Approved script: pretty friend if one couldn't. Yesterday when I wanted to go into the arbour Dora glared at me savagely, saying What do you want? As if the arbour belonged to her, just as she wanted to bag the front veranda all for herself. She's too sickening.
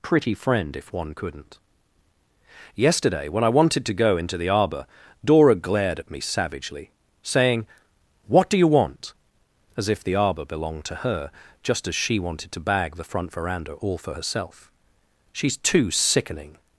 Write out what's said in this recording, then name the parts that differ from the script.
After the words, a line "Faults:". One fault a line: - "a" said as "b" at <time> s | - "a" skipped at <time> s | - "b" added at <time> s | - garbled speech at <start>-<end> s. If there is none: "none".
pretty friend if one couldn't. Yesterday when I wanted to go into the arbour Dora glared at me savagely, saying What do you want? As if the arbour belonged to her, just as she wanted to bag the front veranda all for herself. She's too sickening.
Faults:
none